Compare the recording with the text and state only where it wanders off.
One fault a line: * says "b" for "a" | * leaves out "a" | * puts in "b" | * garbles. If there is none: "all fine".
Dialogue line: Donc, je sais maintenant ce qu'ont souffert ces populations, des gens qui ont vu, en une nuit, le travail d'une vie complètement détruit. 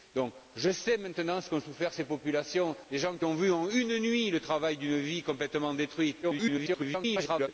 * garbles